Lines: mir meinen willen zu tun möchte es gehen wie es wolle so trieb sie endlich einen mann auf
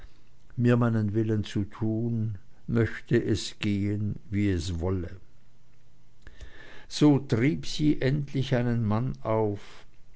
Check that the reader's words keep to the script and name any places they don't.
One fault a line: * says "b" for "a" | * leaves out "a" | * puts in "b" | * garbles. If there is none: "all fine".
all fine